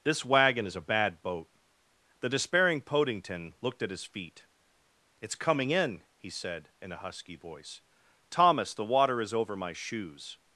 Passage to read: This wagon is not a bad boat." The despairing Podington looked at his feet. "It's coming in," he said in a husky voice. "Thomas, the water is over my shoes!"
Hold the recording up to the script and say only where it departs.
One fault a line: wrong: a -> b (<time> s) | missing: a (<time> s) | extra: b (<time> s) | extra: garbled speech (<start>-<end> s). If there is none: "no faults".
missing: not (0.8 s)